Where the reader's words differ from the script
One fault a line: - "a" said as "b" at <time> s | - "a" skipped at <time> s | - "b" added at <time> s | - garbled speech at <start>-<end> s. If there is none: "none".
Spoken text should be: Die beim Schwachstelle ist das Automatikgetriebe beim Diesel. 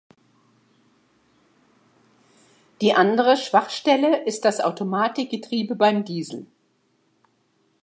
- "beim" said as "andere" at 3.0 s